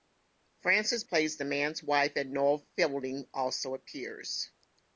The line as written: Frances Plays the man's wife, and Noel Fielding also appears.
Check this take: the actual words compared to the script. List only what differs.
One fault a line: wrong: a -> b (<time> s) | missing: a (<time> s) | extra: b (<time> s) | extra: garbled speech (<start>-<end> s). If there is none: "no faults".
no faults